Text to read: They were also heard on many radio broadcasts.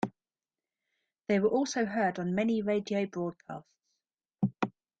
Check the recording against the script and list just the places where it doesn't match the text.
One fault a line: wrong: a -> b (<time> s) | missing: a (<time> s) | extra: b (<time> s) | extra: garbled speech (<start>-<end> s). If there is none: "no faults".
no faults